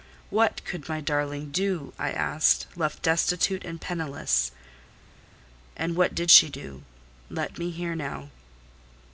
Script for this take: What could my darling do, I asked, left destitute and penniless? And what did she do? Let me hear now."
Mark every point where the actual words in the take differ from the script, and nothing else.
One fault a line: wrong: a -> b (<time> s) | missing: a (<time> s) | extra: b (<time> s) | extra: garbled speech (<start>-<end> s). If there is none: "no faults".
no faults